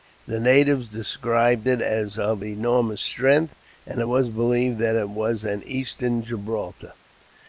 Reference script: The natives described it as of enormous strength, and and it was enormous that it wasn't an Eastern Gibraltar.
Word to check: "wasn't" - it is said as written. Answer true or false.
false